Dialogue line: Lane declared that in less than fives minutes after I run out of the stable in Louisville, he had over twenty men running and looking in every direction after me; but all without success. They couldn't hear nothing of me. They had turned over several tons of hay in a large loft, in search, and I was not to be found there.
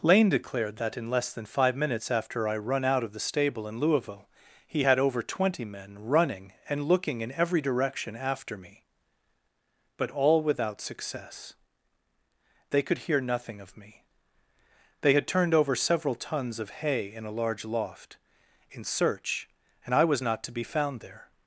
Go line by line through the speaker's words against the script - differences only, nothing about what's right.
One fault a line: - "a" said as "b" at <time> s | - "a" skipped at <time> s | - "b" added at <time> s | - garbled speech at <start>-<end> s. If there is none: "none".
- "fives" said as "five" at 1.4 s
- "couldn't" said as "could" at 12.8 s